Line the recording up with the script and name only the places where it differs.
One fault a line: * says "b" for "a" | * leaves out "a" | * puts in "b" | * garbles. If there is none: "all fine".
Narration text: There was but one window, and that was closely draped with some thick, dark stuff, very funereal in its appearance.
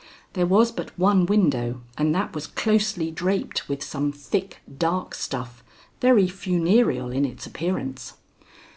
all fine